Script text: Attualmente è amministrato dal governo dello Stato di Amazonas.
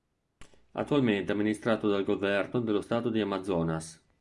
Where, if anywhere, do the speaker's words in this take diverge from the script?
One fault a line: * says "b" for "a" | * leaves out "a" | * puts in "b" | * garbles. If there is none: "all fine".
all fine